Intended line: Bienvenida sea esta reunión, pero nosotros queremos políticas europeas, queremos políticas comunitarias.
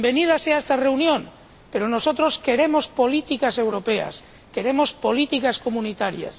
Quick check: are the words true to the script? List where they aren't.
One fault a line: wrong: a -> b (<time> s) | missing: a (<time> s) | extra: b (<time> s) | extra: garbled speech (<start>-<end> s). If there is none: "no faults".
no faults